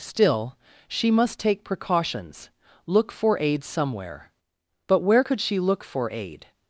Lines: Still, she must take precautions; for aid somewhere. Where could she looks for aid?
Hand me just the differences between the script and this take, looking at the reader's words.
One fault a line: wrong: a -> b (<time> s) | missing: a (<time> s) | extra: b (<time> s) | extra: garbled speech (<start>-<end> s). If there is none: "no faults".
extra: look (2.9 s)
extra: But (4.9 s)
wrong: looks -> look (5.6 s)